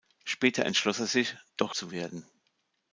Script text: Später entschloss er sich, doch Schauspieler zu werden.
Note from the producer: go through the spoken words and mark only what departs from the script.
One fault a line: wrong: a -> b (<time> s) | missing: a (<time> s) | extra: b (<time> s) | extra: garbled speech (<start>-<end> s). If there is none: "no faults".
missing: Schauspieler (1.8 s)